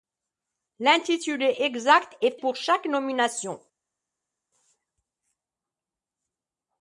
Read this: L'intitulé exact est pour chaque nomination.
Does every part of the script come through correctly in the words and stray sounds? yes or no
yes